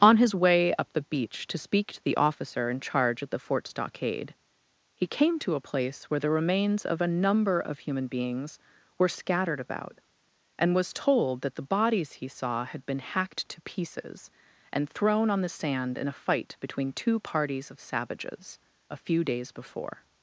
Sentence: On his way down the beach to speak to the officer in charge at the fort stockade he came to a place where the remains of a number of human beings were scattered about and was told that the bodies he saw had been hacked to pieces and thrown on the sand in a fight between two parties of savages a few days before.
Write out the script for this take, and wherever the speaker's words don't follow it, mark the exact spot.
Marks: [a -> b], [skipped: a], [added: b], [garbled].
On his way [down -> up] the beach to speak to the officer in charge at the fort stockade he came to a place where the remains of a number of human beings were scattered about and was told that the bodies he saw had been hacked to pieces and thrown on the sand in a fight between two parties of savages a few days before.